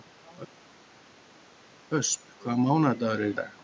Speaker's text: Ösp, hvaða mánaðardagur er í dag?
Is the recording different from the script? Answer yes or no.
no